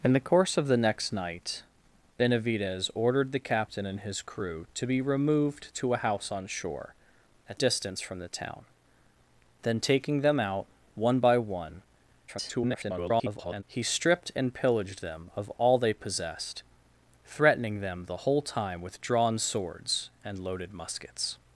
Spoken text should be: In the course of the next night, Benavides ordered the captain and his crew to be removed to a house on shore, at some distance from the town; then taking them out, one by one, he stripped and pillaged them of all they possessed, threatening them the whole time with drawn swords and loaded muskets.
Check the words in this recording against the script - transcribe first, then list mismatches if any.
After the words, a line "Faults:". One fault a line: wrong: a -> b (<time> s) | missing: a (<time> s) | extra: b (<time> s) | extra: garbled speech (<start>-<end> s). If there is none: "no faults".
In the course of the next night, Benavides ordered the captain and his crew to be removed to a house on shore, at distance from the town; then taking them out, one by one, [garbled] he stripped and pillaged them of all they possessed, threatening them the whole time with drawn swords and loaded muskets.
Faults:
missing: some (7.6 s)
extra: garbled speech (12.3-13.6 s)